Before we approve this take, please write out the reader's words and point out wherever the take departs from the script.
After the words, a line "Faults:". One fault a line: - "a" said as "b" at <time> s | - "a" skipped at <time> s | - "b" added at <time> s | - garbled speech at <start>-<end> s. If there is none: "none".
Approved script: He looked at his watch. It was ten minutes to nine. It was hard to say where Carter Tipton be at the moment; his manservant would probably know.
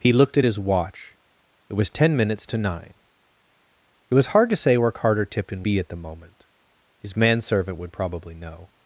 He looked at his watch. It was ten minutes to nine. It was hard to say where Carter Tipton be at the moment; his manservant would probably know.
Faults:
none